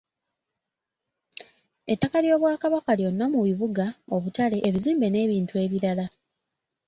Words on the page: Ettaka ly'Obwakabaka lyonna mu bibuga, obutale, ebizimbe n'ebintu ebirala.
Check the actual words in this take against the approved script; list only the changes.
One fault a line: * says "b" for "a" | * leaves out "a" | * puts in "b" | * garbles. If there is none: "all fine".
all fine